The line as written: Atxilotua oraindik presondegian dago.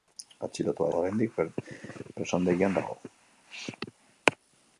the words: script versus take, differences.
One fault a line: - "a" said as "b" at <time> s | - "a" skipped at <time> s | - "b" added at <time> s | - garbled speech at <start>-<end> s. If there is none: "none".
none